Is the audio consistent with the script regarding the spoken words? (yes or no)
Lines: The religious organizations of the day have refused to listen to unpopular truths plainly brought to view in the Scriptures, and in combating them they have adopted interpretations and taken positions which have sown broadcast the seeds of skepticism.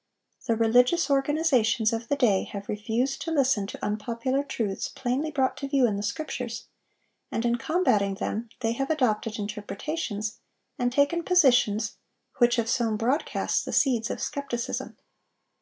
yes